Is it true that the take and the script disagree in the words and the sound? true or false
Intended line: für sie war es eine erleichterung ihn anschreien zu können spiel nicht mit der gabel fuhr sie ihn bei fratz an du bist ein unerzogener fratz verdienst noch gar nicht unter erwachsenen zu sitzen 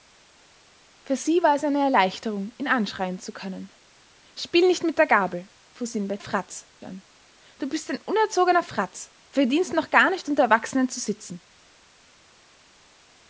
false